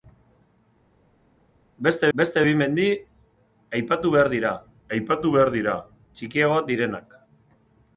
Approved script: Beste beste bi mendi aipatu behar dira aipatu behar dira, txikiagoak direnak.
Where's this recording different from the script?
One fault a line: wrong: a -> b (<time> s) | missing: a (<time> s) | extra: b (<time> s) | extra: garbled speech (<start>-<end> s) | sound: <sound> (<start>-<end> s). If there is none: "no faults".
no faults